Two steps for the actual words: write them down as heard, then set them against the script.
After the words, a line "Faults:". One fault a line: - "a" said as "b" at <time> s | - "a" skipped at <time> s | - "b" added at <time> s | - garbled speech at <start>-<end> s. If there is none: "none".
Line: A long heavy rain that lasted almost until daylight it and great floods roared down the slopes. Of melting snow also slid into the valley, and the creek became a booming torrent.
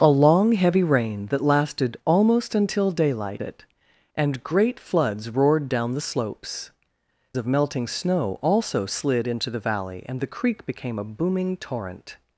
A long heavy rain that lasted almost until daylight it and great floods roared down the slopes. Of melting snow also slid into the valley, and the creek became a booming torrent.
Faults:
none